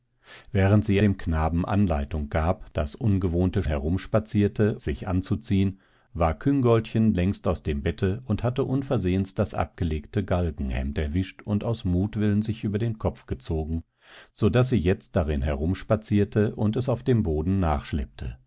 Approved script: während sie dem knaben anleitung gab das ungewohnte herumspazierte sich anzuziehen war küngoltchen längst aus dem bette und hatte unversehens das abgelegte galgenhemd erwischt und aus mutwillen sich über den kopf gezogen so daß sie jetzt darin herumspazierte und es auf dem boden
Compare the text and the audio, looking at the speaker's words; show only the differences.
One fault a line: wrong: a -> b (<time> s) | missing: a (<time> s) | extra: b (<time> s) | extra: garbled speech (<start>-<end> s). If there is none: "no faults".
no faults